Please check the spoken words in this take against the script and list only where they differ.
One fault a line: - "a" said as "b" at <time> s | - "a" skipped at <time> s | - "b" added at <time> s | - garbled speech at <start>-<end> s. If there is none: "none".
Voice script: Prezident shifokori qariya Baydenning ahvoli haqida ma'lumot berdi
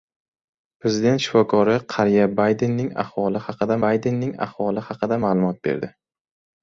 - "Baydenning ahvoli haqida" added at 3.9 s